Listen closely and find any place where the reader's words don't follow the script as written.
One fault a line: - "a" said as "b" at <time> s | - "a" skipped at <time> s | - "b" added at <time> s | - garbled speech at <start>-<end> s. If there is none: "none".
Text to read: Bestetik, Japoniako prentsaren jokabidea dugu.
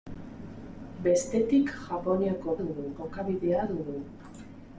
- "prentsaren" said as "dugu" at 2.6 s